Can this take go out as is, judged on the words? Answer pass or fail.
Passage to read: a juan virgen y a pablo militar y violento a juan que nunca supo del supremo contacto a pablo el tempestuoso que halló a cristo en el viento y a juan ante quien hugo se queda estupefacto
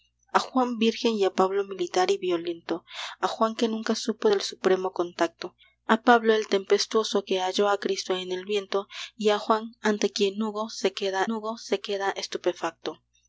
fail